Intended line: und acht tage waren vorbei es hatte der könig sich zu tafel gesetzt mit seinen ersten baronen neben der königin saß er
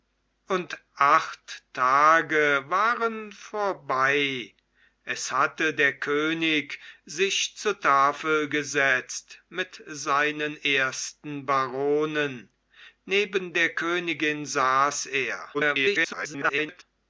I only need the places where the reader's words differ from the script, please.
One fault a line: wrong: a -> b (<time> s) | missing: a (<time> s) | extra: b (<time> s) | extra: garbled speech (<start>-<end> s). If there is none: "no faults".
extra: garbled speech (15.5-16.8 s)